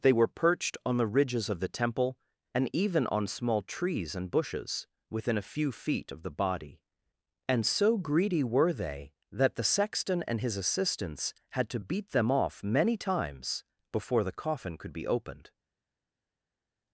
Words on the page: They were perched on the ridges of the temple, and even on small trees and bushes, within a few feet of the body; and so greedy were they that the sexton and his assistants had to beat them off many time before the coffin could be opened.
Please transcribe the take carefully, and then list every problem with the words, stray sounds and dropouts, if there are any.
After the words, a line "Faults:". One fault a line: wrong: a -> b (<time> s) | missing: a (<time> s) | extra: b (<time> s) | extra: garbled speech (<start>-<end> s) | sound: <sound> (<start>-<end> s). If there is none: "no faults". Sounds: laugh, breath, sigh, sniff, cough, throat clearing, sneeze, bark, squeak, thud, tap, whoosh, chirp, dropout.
They were perched on the ridges of the temple, and even on small trees and bushes, within a few feet of the body; and so greedy were they that the sexton and his assistants had to beat them off many times before the coffin could be opened.
Faults:
wrong: time -> times (13.0 s)